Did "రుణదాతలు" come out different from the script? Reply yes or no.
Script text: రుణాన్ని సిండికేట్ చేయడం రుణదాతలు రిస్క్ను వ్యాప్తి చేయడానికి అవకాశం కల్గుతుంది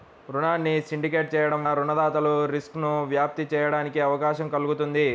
no